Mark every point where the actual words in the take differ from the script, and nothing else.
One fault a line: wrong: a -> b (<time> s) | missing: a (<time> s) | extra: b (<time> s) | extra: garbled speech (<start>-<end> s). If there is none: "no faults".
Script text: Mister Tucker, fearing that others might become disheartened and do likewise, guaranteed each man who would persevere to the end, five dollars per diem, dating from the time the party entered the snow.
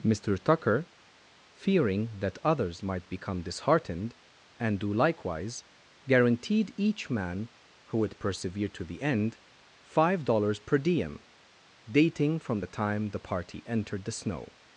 no faults